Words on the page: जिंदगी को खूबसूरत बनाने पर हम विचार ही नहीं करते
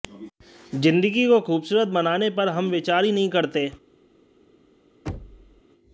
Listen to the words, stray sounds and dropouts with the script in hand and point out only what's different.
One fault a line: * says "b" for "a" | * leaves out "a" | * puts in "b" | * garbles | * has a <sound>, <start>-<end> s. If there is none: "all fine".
* has a thud, 5.1-5.6 s